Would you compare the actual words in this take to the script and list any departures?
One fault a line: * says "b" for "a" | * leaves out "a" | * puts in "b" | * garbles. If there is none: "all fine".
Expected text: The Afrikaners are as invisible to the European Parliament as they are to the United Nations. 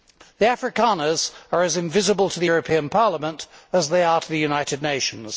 all fine